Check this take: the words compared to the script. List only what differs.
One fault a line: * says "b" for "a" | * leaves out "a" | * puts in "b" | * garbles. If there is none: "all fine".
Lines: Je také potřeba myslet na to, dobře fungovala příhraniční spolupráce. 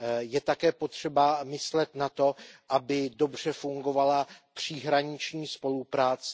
* puts in "aby"